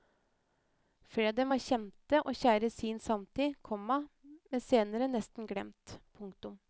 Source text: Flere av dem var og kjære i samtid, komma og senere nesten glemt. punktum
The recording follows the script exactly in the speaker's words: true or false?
false